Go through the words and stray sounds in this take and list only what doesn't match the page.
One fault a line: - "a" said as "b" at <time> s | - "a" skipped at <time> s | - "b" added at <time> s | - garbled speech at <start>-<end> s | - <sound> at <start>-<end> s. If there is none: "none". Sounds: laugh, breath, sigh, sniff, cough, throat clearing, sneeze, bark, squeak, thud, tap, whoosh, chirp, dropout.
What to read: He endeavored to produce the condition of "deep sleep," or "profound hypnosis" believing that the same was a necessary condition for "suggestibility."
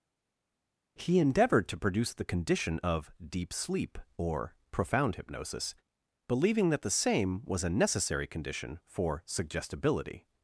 none